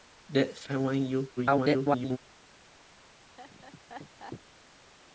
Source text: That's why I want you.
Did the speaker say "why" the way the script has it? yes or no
no